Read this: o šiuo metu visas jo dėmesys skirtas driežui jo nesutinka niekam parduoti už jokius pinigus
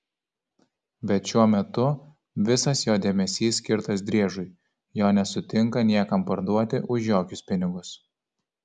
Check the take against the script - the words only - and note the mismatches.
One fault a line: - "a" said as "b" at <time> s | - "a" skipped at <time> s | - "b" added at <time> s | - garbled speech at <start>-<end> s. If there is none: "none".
- "o" said as "bet" at 1.1 s